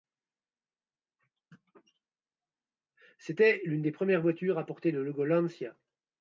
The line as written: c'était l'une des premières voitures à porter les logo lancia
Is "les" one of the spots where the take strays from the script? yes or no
yes